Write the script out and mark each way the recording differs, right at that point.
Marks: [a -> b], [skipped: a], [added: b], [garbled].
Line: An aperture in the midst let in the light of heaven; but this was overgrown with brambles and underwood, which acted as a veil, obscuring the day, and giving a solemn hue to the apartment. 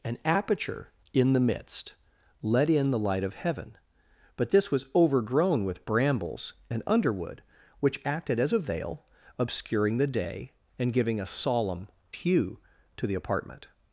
An aperture in the midst let in the light of heaven; but this was overgrown with brambles and underwood, which acted as a veil, obscuring the day, and giving a solemn hue to the apartment.